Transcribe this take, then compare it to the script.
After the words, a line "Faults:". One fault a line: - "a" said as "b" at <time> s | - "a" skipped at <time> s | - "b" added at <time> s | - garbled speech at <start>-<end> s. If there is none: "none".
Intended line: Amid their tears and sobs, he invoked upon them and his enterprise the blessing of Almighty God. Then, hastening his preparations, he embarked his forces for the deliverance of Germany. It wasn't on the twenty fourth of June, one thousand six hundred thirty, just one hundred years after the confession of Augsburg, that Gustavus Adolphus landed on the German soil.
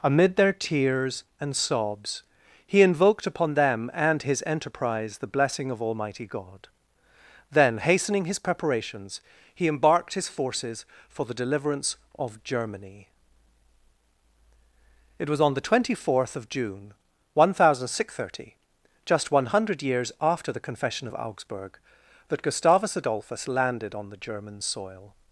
Amid their tears and sobs, he invoked upon them and his enterprise the blessing of Almighty God. Then, hastening his preparations, he embarked his forces for the deliverance of Germany. It was on the twenty fourth of June, one thousand six hundred thirty, just one hundred years after the confession of Augsburg, that Gustavus Adolphus landed on the German soil.
Faults:
- "wasn't" said as "was" at 15.3 s